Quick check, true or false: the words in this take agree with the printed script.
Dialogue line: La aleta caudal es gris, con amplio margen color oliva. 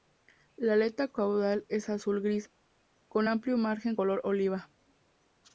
false